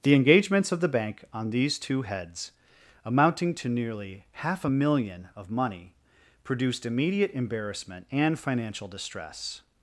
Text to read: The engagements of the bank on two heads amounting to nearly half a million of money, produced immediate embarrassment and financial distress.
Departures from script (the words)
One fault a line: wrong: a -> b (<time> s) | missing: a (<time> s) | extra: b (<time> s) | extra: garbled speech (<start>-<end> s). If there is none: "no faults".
extra: these (1.5 s)